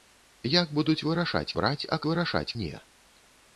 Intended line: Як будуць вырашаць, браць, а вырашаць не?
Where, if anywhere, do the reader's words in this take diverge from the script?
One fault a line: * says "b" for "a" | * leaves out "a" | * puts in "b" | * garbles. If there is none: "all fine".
all fine